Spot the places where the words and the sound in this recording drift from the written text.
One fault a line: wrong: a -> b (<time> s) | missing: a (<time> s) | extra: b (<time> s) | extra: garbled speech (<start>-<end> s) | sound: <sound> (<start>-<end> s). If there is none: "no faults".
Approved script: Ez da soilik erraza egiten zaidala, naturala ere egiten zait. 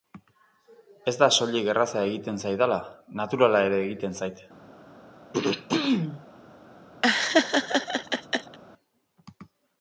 sound: throat clearing (5.3-6.2 s)
sound: laugh (7.0-8.6 s)